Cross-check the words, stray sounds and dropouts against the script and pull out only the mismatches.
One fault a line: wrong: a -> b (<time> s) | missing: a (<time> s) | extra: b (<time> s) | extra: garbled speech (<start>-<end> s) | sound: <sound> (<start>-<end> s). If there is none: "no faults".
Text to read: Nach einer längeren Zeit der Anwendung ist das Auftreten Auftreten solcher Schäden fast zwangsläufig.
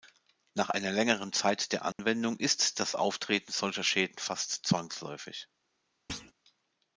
sound: dropout (1.9-2.0 s)
missing: Auftreten (3.5 s)
sound: thud (6.1-6.3 s)